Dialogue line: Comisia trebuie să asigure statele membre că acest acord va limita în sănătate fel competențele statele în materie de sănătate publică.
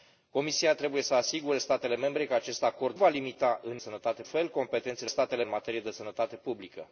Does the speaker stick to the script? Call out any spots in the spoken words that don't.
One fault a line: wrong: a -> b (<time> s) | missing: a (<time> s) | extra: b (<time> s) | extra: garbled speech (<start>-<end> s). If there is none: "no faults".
no faults